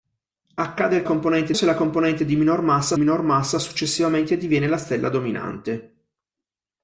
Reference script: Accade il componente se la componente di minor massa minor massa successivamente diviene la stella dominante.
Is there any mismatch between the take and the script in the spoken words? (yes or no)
no